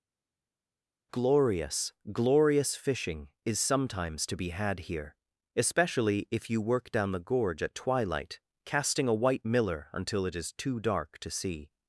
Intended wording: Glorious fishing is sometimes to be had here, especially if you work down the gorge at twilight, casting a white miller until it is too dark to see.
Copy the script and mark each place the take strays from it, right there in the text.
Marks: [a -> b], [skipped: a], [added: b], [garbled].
Glorious [added: glorious] fishing is sometimes to be had here, especially if you work down the gorge at twilight, casting a white miller until it is too dark to see.